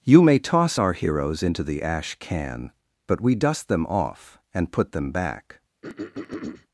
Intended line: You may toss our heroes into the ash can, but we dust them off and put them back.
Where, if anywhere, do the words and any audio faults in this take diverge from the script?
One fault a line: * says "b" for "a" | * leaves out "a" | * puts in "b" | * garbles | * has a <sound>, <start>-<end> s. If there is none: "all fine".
* has a throat clearing, 5.8-6.7 s